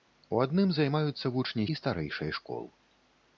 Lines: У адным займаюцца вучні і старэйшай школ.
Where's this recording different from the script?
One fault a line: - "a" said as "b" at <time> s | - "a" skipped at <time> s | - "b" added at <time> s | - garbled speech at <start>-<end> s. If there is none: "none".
none